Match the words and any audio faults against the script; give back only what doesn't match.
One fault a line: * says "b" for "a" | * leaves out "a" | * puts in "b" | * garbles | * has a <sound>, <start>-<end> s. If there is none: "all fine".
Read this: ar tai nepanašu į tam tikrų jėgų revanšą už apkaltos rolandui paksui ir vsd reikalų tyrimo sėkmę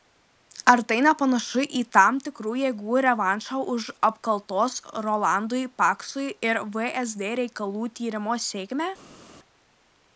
all fine